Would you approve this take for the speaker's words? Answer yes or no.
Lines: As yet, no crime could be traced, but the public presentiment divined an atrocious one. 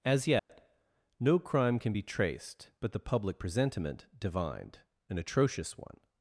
no